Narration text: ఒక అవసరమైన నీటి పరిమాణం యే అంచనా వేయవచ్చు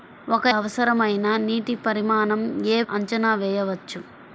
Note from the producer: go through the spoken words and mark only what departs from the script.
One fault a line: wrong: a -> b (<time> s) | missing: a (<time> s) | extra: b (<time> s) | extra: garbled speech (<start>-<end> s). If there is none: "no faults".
no faults